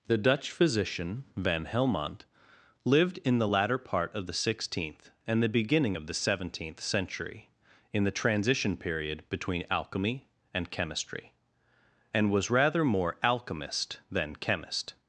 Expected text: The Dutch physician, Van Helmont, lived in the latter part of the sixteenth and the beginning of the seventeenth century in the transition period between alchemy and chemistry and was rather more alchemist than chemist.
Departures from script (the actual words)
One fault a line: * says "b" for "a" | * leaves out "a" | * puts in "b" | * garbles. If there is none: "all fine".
all fine